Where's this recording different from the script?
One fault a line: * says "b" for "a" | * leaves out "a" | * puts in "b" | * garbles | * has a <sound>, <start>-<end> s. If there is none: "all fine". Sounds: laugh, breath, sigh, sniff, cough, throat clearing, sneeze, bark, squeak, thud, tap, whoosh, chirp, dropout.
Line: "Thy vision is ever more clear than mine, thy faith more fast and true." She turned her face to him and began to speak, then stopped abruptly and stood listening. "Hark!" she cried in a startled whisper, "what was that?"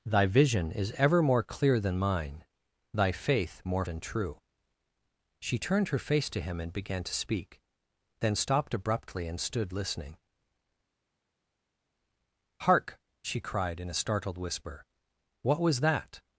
* leaves out "fast"